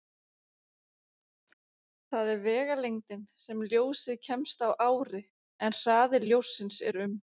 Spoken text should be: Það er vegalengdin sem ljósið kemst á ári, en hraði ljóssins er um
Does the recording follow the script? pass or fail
pass